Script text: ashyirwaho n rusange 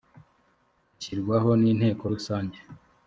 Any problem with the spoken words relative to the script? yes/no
yes